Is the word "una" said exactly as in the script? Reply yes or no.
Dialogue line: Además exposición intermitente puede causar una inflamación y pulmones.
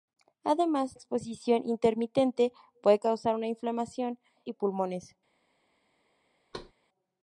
yes